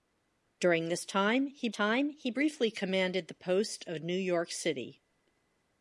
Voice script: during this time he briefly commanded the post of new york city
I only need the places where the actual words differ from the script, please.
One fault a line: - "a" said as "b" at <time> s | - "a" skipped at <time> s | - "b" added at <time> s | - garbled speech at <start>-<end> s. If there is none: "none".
- "time he" added at 1.7 s